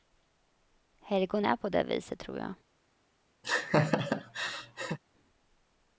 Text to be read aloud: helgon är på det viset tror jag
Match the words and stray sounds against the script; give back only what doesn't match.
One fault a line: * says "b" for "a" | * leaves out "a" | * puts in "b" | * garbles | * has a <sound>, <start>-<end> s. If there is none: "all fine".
* has a laugh, 3.4-5.0 s